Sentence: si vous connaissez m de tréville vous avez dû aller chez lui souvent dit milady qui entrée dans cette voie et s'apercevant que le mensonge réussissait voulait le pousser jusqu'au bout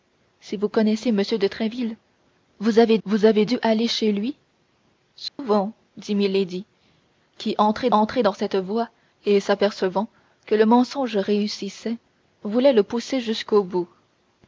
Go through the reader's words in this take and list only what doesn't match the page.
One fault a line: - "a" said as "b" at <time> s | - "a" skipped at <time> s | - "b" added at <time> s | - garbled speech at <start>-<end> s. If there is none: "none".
- "vous avez" added at 3.0 s
- "entrée" added at 7.9 s